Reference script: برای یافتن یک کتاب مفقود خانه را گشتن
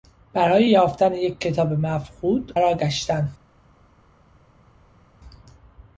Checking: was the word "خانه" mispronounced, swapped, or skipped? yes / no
yes